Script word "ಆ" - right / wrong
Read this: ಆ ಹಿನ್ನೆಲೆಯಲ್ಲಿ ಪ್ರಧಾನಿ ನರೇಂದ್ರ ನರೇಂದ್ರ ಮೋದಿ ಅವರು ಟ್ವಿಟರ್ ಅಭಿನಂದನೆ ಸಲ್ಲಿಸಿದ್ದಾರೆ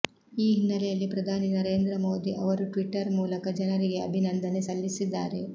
wrong